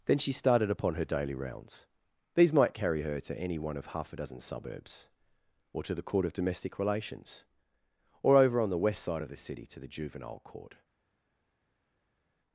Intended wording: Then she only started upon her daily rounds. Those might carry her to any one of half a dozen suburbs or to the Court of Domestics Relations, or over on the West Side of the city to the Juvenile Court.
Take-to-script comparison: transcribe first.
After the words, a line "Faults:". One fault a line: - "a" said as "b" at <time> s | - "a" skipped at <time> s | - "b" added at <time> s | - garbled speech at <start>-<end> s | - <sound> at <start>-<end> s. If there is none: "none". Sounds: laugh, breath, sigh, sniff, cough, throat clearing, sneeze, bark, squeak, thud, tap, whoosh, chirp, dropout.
Then she started upon her daily rounds. These might carry her to any one of half a dozen suburbs or to the Court of Domestic Relations, or over on the West Side of the city to the Juvenile Court.
Faults:
- "only" skipped at 0.3 s
- "Those" said as "These" at 2.3 s
- "Domestics" said as "Domestic" at 6.3 s